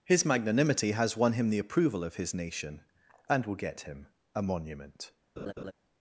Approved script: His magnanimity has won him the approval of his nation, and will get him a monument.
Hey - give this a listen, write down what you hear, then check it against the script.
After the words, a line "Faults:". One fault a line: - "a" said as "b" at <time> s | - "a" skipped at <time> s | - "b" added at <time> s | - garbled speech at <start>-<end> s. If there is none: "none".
His magnanimity has won him the approval of his nation, and will get him a monument.
Faults:
none